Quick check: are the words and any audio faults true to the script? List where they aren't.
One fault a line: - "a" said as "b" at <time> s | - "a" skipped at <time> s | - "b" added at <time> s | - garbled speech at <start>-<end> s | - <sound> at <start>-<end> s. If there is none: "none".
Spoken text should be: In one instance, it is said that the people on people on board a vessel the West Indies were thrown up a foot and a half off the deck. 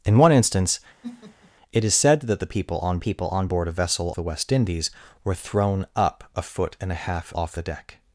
- laugh at 1.0-1.5 s